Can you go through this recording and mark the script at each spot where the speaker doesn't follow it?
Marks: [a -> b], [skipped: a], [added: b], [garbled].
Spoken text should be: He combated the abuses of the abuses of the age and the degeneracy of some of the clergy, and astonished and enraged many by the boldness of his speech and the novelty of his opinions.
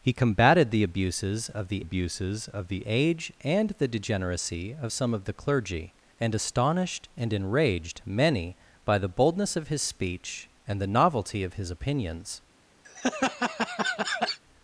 He combated the abuses of the abuses of the age and the degeneracy of some of the clergy, and astonished and enraged many by the boldness of his speech and the novelty of his opinions.